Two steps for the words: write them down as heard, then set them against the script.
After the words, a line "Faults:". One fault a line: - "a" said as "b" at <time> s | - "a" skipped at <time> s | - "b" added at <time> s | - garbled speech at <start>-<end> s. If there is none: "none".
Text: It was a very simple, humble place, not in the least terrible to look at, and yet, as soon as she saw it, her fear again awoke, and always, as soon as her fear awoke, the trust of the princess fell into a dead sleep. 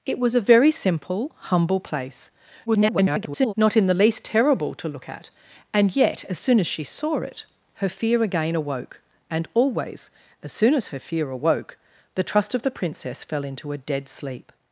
It was a very simple, humble place, [garbled] not in the least terrible to look at, and yet, as soon as she saw it, her fear again awoke, and always, as soon as her fear awoke, the trust of the princess fell into a dead sleep.
Faults:
- garbled speech at 2.7-3.5 s